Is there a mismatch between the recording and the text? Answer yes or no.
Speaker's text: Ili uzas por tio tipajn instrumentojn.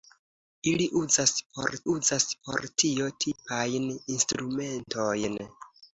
yes